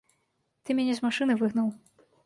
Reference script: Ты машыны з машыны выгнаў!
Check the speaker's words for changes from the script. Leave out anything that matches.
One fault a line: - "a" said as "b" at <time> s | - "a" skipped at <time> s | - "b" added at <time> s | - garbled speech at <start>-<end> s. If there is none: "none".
- "машыны" said as "мяне" at 0.8 s